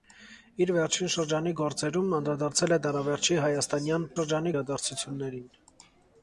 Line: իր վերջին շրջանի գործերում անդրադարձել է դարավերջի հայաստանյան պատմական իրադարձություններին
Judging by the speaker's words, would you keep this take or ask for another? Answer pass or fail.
fail